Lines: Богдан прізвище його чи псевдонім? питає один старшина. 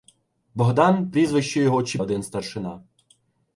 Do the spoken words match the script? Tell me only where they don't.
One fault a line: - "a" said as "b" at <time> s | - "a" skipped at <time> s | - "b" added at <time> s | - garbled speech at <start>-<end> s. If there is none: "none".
- "псевдонім питає" skipped at 2.0 s